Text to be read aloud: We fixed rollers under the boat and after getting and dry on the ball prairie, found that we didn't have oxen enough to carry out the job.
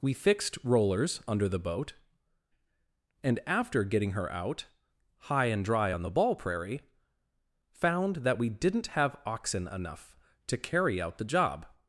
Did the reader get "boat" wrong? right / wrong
right